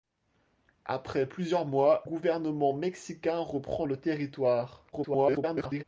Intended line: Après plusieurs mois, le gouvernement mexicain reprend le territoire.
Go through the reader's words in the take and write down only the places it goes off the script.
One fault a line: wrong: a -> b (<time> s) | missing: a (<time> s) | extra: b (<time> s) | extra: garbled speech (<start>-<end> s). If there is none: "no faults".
missing: le (2.0 s)
extra: garbled speech (4.9-5.8 s)